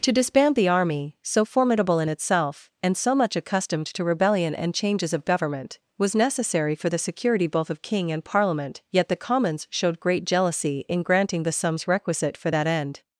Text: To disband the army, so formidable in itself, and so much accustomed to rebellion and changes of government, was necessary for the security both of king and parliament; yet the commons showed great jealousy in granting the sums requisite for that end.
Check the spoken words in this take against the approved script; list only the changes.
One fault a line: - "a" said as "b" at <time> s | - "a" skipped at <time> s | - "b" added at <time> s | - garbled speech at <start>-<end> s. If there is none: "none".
none